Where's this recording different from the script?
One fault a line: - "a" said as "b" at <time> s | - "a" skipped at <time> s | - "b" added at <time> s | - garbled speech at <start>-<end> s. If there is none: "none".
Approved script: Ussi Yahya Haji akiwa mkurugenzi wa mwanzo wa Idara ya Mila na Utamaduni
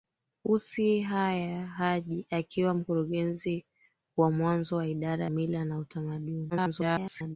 - "ya" skipped at 5.3 s
- garbled speech at 6.5-7.4 s